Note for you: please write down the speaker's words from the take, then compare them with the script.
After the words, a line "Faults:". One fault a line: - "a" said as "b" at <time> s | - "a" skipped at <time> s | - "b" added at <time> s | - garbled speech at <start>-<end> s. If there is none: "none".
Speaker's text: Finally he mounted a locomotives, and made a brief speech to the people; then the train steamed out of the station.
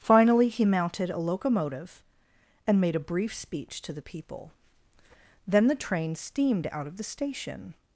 Finally he mounted a locomotive, and made a brief speech to the people; then the train steamed out of the station.
Faults:
- "locomotives" said as "locomotive" at 1.2 s